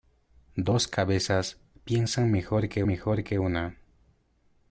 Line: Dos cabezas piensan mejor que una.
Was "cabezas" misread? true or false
false